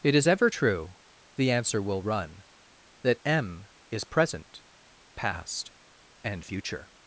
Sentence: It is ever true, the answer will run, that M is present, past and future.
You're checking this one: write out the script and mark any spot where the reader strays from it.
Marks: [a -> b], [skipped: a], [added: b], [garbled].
It is ever true, the answer will run, that M is present, past and future.